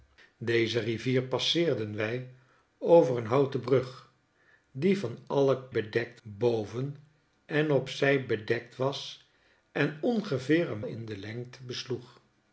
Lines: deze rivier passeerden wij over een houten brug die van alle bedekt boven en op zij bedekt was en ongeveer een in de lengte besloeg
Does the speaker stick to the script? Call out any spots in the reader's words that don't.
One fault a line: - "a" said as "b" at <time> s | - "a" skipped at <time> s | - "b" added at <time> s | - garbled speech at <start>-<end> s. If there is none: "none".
none